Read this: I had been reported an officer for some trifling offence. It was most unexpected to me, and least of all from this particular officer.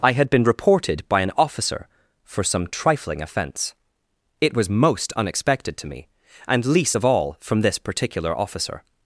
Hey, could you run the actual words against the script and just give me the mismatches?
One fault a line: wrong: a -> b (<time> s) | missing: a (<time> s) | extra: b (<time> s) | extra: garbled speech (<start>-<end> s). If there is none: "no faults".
extra: by (1.1 s)